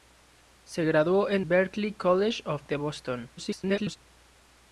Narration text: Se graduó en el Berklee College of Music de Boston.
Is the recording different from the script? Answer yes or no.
yes